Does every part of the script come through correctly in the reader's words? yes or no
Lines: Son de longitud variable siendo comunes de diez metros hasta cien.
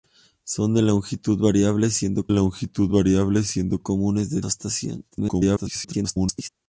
no